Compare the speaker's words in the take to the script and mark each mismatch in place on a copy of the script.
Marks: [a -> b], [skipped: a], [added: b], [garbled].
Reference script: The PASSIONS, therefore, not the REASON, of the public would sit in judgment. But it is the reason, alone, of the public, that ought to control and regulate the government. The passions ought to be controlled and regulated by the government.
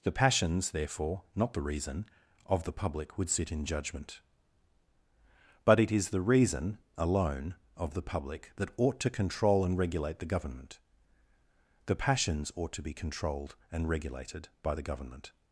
The PASSIONS, therefore, not the REASON, of the public would sit in judgment. But it is the reason, alone, of the public, that ought to control and regulate the government. The passions ought to be controlled and regulated by the government.